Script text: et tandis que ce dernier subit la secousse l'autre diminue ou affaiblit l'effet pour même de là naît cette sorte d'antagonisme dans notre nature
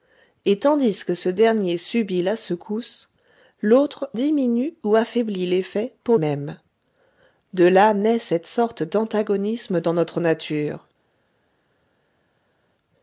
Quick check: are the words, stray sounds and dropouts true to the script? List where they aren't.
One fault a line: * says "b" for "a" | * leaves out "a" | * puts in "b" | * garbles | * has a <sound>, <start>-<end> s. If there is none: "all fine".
all fine